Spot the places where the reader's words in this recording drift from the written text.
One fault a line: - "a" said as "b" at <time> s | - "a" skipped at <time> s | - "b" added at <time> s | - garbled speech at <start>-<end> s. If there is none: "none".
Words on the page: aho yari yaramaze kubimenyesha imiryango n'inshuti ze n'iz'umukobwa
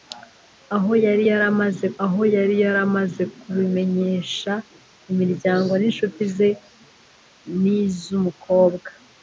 - "aho yari yaramaze" added at 2.0 s